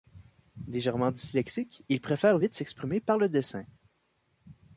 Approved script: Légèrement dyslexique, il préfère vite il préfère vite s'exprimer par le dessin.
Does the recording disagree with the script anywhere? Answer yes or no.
yes